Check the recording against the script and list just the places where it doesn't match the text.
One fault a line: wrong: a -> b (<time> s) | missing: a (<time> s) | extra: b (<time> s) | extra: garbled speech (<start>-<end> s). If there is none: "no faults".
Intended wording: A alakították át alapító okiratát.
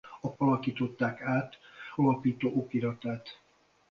no faults